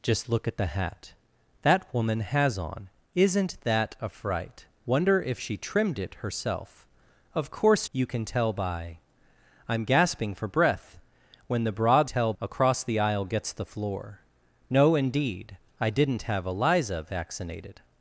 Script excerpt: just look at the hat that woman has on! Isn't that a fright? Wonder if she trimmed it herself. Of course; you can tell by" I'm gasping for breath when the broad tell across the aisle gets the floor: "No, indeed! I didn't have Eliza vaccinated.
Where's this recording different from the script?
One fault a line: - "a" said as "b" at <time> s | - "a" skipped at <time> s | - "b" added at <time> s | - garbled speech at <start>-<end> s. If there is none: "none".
none